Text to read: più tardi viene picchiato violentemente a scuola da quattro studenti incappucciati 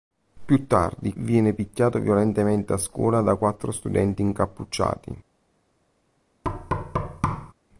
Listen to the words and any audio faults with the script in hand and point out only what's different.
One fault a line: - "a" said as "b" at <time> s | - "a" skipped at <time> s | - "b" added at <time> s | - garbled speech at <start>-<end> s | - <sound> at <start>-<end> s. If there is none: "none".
- thud at 6.4-7.5 s